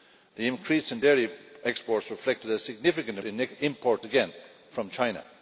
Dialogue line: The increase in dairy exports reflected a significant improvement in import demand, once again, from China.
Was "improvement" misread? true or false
true